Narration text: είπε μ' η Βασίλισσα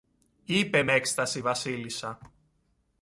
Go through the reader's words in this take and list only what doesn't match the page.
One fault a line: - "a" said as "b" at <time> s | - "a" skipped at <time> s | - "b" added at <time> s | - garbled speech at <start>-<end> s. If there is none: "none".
- "έκσταση" added at 0.9 s